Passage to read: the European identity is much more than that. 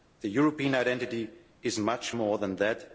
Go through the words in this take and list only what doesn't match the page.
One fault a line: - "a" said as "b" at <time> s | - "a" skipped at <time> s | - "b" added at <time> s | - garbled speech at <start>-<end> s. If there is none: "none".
none